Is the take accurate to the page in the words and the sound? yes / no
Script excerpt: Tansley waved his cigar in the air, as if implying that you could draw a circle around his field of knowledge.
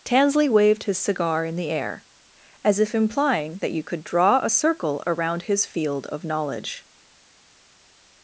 yes